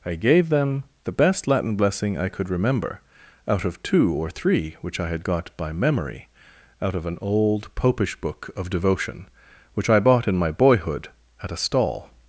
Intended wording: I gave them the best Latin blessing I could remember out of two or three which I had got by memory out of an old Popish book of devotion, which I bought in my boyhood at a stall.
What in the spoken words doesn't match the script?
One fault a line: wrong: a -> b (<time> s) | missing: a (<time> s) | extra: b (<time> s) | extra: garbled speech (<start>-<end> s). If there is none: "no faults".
no faults